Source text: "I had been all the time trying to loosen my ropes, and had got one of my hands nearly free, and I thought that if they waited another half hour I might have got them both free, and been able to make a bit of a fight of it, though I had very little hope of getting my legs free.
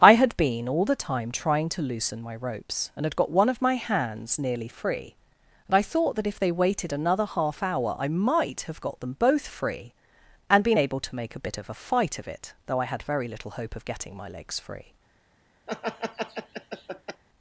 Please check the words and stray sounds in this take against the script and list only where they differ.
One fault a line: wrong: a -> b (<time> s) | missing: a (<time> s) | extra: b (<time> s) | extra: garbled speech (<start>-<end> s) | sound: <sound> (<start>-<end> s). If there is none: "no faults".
sound: laugh (15.7-17.2 s)